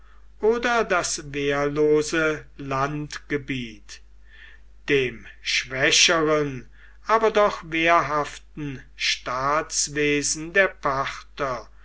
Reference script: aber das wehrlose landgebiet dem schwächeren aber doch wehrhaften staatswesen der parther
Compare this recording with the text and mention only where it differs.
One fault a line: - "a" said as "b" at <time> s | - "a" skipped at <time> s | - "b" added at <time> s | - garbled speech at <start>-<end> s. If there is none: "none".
- "aber" said as "oder" at 0.4 s